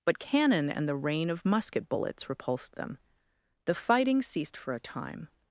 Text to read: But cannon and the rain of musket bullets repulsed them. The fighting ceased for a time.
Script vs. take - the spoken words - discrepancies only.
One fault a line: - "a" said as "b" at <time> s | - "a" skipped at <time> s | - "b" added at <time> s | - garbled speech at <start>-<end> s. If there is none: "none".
none